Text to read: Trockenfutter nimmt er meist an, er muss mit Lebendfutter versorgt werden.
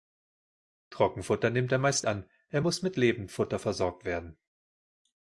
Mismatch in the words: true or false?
false